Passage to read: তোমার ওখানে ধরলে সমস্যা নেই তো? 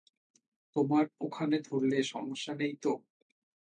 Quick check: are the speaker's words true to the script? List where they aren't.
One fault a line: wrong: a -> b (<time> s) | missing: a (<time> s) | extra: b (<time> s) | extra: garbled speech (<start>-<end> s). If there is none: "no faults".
no faults